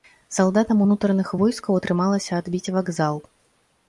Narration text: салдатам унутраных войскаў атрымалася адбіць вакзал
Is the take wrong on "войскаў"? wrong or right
right